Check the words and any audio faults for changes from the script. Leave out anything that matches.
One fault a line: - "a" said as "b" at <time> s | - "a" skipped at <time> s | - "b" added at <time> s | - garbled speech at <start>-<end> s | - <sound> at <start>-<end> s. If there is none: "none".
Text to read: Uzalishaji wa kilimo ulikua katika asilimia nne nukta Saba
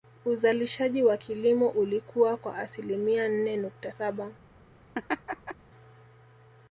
- "katika" said as "kwa" at 2.4 s
- laugh at 4.9-5.6 s